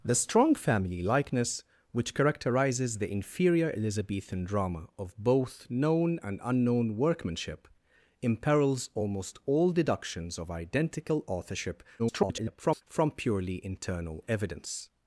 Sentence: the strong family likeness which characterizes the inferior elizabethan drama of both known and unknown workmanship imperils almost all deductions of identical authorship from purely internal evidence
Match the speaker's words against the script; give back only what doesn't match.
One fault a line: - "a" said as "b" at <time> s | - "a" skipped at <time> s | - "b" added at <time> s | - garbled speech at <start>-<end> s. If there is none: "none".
- garbled speech at 12.0-12.8 s